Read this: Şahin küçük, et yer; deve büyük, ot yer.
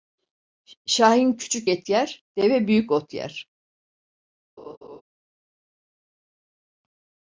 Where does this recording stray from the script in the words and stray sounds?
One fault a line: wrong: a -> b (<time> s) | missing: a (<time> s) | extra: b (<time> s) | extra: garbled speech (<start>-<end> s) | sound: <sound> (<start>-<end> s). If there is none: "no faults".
sound: laugh (4.6-5.0 s)